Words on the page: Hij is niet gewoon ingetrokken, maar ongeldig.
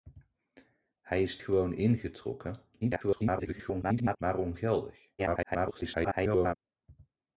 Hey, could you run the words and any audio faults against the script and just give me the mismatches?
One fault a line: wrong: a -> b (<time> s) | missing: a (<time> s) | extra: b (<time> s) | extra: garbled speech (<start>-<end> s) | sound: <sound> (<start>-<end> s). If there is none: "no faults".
missing: niet (1.4 s)
extra: garbled speech (2.8-4.2 s)
extra: garbled speech (5.2-6.6 s)